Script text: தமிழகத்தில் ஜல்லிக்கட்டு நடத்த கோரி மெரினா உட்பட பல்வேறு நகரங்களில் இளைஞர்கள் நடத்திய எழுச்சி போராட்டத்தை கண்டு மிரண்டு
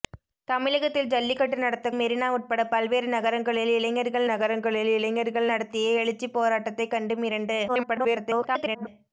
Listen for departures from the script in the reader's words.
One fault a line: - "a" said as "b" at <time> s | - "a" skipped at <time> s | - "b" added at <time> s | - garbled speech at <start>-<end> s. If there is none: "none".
- "கோரி" skipped at 1.9 s
- "நகரங்களில் இளைஞர்கள்" added at 4.3 s
- garbled speech at 7.7-8.9 s